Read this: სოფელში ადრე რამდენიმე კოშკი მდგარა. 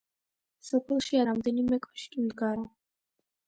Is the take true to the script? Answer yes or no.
no